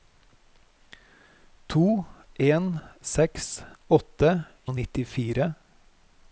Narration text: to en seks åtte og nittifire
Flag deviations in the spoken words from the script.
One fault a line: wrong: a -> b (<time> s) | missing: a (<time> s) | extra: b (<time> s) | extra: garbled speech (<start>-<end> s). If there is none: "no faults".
no faults